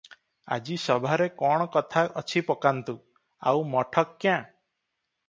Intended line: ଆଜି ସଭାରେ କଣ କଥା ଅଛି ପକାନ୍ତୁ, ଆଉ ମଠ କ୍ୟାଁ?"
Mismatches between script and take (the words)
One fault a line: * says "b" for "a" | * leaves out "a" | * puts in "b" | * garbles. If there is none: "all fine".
all fine